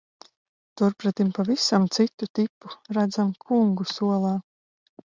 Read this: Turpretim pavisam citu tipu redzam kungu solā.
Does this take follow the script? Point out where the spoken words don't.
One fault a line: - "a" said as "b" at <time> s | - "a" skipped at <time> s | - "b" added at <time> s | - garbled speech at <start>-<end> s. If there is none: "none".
none